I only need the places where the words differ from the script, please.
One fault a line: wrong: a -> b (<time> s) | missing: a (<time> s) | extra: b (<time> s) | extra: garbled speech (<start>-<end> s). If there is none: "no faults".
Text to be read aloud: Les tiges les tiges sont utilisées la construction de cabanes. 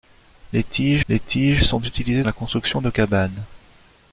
no faults